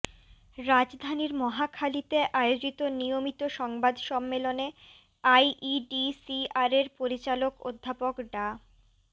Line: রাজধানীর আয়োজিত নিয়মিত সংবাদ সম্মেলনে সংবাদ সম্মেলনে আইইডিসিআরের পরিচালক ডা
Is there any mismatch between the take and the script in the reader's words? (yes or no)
yes